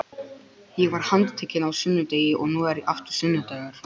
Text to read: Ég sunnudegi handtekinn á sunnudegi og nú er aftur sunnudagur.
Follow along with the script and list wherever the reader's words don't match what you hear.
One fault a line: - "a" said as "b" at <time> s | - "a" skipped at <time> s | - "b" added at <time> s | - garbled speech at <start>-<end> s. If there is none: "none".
- "sunnudegi" said as "var" at 0.9 s